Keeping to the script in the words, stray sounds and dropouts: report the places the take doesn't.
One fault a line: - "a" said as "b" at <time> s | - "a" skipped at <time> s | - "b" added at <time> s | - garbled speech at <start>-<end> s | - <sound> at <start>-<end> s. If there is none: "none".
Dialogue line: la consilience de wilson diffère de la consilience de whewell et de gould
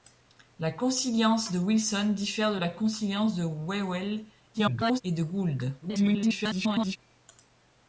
- garbled speech at 4.5-5.0 s
- garbled speech at 5.8-7.0 s